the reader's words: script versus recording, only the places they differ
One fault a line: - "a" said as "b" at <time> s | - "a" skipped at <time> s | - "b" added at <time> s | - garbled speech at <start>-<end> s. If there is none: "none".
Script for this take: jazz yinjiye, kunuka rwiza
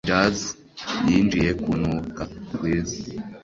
none